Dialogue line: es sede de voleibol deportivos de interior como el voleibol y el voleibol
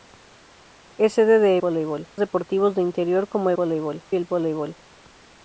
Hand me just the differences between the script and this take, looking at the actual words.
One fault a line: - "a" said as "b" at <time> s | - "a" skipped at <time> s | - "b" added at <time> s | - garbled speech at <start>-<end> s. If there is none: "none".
none